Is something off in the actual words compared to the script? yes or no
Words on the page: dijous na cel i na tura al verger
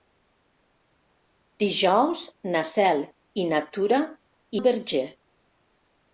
no